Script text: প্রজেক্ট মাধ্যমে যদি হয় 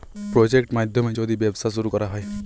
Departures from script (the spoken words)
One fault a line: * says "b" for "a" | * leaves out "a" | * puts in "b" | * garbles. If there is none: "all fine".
* puts in "ব্যবসা শুরু করা"